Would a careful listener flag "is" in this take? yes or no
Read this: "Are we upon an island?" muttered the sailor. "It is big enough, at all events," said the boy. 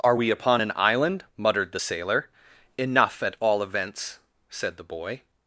yes